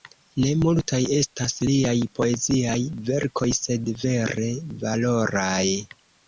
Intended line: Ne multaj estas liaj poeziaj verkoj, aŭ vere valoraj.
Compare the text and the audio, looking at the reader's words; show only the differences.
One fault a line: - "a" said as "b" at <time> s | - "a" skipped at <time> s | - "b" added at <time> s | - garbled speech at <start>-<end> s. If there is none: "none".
- "aŭ" said as "sed" at 3.6 s